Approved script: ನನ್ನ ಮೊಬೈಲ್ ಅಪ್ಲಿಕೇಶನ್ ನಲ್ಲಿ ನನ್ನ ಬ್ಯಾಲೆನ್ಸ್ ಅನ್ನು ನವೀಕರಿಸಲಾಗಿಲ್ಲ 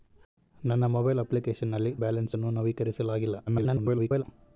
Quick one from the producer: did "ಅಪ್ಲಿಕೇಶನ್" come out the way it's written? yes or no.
yes